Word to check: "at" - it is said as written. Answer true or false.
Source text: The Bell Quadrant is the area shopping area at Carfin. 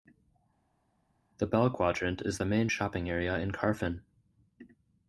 false